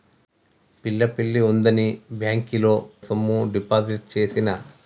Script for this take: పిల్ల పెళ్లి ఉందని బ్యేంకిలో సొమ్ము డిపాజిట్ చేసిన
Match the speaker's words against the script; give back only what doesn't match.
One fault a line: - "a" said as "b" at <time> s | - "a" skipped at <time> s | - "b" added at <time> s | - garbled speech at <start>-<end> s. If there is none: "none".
none